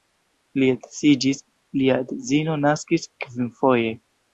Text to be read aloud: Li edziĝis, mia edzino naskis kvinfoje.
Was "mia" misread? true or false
true